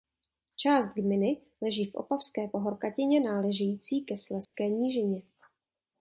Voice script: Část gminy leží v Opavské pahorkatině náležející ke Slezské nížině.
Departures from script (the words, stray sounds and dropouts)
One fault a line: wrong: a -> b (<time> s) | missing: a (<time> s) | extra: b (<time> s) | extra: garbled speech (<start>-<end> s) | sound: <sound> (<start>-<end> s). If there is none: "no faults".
sound: dropout (4.4-4.5 s)